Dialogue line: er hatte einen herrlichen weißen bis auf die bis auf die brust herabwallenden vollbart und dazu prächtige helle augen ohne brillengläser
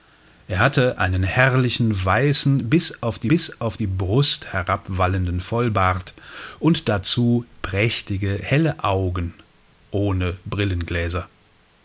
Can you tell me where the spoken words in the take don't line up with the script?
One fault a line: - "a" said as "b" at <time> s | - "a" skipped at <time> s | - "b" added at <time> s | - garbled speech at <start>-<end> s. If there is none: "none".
none